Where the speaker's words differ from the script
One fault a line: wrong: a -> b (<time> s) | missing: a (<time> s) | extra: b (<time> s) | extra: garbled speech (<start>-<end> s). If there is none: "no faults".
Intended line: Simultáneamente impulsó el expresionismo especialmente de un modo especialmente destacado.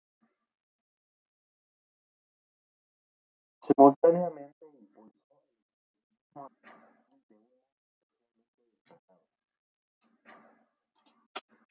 no faults